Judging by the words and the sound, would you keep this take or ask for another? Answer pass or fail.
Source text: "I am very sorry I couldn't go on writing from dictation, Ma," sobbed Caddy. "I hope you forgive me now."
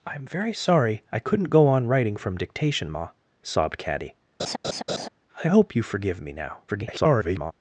fail